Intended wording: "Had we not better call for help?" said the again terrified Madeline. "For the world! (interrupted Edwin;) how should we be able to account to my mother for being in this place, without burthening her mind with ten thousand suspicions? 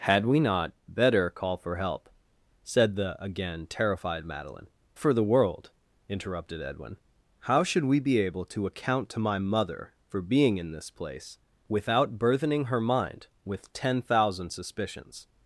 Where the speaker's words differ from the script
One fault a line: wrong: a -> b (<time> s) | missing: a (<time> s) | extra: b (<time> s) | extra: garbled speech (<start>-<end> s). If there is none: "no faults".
no faults